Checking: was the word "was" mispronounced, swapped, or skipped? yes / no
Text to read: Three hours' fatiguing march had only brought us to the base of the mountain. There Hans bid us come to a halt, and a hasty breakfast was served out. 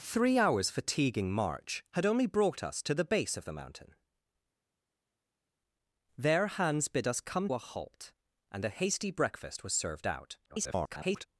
no